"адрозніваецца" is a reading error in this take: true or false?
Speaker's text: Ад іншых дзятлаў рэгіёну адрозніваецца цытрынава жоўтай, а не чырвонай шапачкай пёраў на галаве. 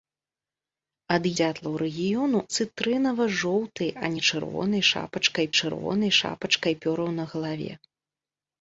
true